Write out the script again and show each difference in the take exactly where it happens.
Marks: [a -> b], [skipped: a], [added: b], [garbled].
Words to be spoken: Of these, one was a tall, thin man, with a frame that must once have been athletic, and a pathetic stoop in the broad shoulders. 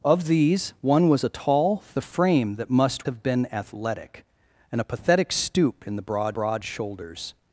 Of these, one was a tall, [skipped: thin man, with] a frame that must [skipped: once] have been athletic, and a pathetic stoop in the broad [added: broad] shoulders.